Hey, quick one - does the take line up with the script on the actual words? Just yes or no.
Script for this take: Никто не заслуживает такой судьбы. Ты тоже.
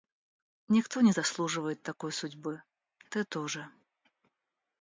yes